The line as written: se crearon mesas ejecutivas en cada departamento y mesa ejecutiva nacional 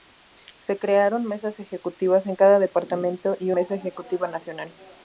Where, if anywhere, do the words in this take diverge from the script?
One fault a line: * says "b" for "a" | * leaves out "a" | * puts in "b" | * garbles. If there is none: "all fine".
all fine